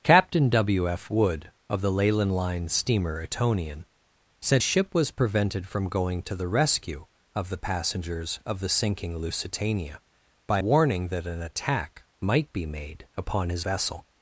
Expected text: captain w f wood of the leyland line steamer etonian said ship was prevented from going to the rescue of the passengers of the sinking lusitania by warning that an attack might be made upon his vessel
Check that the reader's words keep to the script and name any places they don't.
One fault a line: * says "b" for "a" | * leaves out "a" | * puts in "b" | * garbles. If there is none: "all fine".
all fine